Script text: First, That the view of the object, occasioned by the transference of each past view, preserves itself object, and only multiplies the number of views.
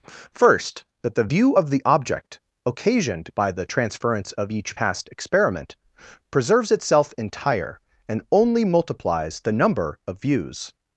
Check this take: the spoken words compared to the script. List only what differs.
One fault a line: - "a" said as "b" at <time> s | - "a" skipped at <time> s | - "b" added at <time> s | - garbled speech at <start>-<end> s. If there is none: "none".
- "view" said as "experiment" at 5.1 s
- "object" said as "entire" at 7.2 s